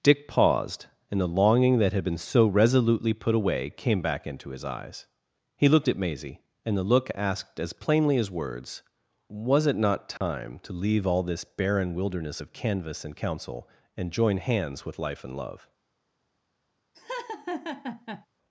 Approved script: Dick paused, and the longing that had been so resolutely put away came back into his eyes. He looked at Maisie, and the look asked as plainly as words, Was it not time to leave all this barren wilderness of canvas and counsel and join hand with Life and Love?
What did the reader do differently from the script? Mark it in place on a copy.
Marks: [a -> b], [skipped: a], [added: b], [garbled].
Dick paused, and the longing that had been so resolutely put away came back into his eyes. He looked at Maisie, and the look asked as plainly as words, Was it not time to leave all this barren wilderness of canvas and counsel and join [hand -> hands] with Life and Love?